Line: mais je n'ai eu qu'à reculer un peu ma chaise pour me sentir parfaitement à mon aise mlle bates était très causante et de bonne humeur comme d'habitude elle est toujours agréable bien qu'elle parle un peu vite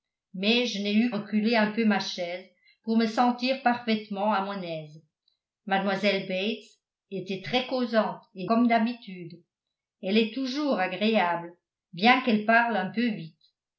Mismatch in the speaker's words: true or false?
true